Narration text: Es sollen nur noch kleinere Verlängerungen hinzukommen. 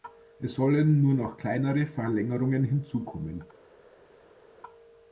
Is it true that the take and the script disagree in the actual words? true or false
false